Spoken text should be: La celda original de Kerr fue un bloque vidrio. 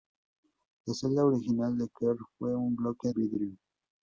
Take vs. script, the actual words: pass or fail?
pass